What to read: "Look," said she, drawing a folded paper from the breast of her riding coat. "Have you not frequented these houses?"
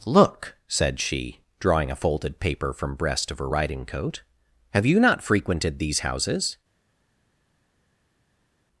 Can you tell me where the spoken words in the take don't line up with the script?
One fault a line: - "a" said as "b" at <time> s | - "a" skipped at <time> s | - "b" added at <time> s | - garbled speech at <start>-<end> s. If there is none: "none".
- "the" skipped at 3.0 s